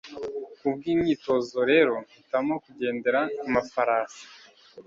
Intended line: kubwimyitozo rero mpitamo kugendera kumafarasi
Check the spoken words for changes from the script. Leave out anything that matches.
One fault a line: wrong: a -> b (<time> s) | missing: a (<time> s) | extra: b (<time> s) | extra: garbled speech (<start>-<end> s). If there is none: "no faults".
no faults